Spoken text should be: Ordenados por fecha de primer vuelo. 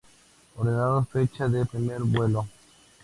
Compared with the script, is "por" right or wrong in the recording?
wrong